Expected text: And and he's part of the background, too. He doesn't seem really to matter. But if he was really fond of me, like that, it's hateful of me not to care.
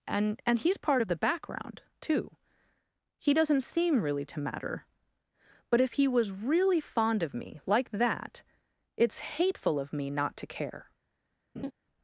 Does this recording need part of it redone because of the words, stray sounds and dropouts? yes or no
yes